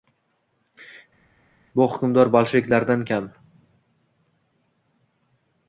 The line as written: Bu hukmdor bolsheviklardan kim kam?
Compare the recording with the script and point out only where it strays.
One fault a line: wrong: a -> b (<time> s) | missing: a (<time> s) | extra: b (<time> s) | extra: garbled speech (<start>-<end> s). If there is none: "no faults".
missing: kim (3.1 s)